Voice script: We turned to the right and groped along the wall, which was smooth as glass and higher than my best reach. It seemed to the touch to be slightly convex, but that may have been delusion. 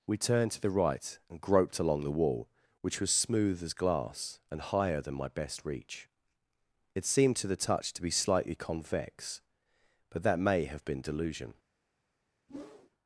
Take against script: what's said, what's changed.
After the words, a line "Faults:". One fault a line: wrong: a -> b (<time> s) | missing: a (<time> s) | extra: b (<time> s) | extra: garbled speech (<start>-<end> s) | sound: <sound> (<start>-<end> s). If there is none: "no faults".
We turned to the right and groped along the wall, which was smooth as glass and higher than my best reach. It seemed to the touch to be slightly convex, but that may have been delusion.
Faults:
sound: whoosh (12.5-12.9 s)